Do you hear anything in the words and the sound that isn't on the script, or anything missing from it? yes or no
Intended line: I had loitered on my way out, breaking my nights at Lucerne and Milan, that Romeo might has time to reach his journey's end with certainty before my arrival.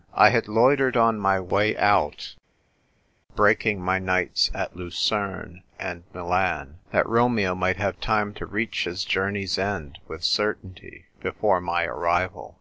yes